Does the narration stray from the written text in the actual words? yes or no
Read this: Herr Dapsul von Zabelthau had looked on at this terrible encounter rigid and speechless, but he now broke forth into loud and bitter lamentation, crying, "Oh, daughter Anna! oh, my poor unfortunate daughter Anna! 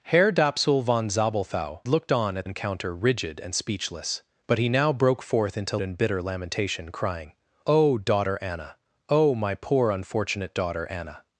yes